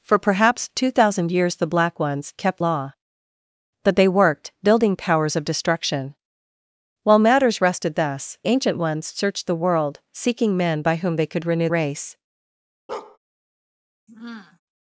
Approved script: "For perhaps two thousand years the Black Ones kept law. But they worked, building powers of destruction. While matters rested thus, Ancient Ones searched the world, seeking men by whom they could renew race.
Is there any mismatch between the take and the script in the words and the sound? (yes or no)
yes